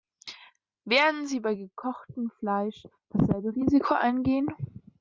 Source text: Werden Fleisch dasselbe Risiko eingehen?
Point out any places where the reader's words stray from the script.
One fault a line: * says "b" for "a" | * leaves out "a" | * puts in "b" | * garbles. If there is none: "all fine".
* puts in "sie bei gekochtem"